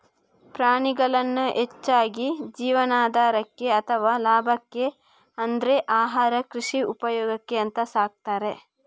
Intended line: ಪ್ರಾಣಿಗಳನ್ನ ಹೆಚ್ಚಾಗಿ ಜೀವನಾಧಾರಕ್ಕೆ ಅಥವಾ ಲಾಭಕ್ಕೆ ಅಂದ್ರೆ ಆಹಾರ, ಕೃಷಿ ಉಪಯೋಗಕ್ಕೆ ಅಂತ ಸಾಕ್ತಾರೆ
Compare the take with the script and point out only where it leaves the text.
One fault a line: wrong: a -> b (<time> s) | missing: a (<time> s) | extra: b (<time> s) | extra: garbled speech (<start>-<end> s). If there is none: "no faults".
no faults